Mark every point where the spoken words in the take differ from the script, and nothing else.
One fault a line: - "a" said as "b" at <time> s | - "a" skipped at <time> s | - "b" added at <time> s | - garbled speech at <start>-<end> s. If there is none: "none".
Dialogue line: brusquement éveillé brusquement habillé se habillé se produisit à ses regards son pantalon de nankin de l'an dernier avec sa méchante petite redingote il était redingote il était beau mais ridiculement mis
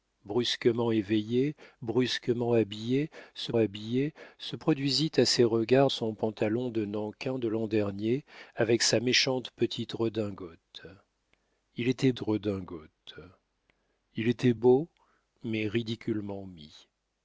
none